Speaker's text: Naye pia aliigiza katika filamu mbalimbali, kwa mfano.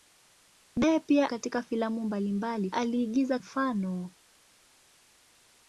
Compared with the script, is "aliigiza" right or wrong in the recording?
wrong